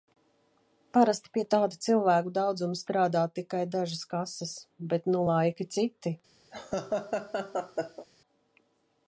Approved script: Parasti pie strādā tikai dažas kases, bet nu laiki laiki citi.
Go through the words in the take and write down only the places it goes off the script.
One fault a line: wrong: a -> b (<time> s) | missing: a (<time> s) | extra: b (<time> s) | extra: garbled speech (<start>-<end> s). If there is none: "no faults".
extra: tāda cilvēku daudzuma (1.6 s)
missing: laiki (5.7 s)